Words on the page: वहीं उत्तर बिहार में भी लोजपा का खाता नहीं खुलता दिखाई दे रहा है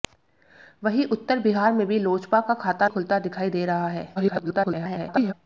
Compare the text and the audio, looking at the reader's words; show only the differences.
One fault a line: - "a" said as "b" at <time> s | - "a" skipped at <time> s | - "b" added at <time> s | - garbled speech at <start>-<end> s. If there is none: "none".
- "नहीं" skipped at 2.9 s
- garbled speech at 4.2-5.3 s